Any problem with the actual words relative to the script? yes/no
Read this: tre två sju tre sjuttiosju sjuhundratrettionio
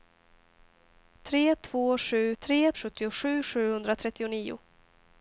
no